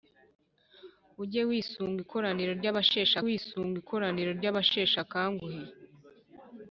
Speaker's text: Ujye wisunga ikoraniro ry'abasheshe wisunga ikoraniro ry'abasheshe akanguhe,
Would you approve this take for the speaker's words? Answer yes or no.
yes